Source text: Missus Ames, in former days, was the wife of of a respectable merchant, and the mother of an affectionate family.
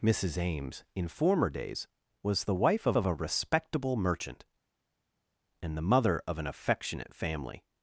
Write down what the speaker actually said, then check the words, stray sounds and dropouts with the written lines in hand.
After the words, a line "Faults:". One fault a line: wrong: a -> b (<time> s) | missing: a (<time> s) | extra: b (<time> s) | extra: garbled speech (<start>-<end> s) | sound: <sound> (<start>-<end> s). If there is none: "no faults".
Missus Ames, in former days, was the wife of of a respectable merchant, and the mother of an affectionate family.
Faults:
no faults